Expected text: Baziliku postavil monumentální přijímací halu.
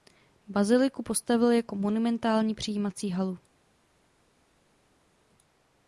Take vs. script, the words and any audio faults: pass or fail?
fail